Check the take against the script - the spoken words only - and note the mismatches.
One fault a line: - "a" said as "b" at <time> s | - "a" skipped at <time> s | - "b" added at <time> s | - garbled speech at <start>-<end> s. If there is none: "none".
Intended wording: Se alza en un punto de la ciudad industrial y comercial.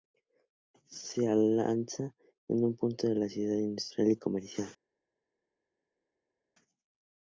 none